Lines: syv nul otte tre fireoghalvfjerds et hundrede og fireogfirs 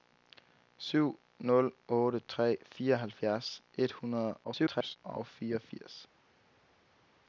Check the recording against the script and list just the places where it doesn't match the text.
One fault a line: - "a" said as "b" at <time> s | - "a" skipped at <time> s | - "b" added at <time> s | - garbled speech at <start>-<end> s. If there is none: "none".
- garbled speech at 4.4-5.0 s